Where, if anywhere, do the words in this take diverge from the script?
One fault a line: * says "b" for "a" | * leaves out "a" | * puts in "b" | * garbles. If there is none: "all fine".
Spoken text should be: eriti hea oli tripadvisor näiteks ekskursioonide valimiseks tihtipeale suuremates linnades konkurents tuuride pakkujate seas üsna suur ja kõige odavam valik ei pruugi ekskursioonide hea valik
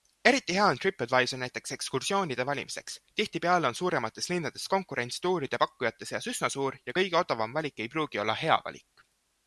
* says "on" for "oli"
* puts in "on"
* says "olla" for "ekskursioonide"